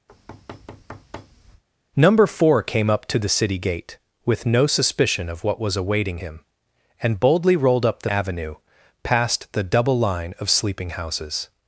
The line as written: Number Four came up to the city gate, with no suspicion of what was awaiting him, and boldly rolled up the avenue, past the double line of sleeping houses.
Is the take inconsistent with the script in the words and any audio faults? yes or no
yes